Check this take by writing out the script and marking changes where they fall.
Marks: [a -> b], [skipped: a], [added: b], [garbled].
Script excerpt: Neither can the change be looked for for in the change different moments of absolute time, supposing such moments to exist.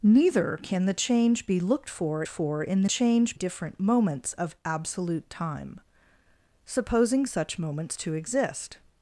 Neither can the change be looked for for in the change different moments of absolute time, supposing such moments to exist.